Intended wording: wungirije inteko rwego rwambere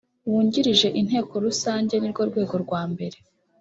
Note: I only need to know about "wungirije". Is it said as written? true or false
true